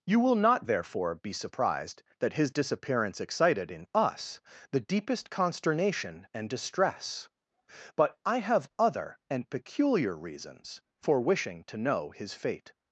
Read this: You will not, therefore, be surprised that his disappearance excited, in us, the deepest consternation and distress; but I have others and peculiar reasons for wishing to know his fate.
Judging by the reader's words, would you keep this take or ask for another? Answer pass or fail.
fail